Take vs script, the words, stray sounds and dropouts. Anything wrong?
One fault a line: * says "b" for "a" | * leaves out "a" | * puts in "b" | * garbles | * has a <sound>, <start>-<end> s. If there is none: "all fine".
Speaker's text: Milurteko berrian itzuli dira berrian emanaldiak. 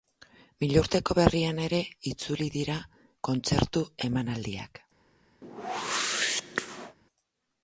* puts in "ere"
* says "kontzertu" for "berrian"
* has a whoosh, 5.4-7.0 s